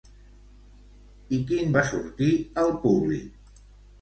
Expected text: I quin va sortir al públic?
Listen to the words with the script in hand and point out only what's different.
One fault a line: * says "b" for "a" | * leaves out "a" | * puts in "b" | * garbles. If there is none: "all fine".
all fine